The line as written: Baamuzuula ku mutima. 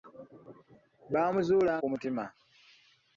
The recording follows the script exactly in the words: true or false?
true